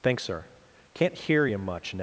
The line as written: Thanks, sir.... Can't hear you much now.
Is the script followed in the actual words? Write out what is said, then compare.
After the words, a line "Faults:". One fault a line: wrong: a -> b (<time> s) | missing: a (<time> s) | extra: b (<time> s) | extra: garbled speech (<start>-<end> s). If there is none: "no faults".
Thanks, sir.... Can't hear you much now.
Faults:
no faults